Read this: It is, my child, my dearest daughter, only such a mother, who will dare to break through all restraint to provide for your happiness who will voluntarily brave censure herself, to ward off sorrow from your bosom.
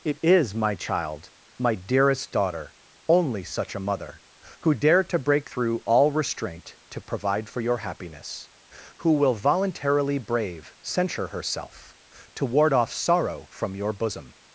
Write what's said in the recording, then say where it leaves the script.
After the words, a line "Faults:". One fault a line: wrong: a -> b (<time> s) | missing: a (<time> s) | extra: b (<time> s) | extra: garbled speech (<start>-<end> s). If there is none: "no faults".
It is, my child, my dearest daughter, only such a mother, who dare to break through all restraint to provide for your happiness who will voluntarily brave censure herself, to ward off sorrow from your bosom.
Faults:
missing: will (4.7 s)